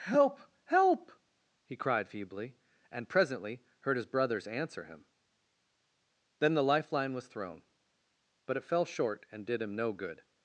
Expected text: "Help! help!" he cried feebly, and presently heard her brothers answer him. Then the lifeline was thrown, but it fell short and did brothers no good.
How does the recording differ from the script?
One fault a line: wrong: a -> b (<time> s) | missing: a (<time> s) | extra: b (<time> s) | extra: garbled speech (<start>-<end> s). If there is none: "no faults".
wrong: her -> his (4.0 s)
wrong: brothers -> him (9.6 s)